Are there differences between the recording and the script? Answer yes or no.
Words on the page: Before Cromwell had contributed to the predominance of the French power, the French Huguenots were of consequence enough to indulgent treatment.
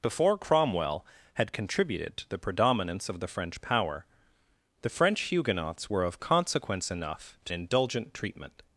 no